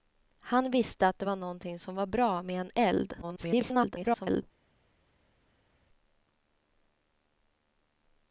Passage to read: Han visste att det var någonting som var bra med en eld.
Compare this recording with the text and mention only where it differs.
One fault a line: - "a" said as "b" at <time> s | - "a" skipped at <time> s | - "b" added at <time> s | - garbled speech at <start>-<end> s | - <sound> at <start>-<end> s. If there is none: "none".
- garbled speech at 3.2-4.4 s